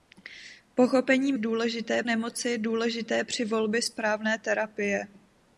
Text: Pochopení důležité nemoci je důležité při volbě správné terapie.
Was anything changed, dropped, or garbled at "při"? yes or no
no